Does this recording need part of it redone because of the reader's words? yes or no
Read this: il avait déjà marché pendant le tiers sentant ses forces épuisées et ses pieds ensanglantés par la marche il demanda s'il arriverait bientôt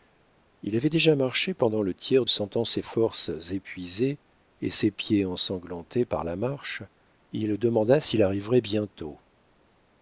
no